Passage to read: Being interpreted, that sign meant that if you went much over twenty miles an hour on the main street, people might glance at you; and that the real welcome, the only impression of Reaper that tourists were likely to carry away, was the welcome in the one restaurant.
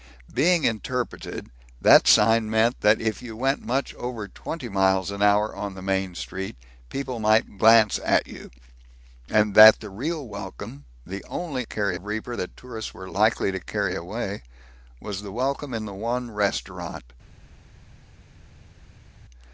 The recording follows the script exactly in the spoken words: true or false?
false